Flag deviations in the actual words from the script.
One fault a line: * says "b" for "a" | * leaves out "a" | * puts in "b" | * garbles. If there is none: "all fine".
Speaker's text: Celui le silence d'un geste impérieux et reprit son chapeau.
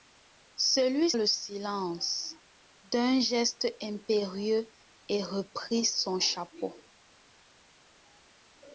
all fine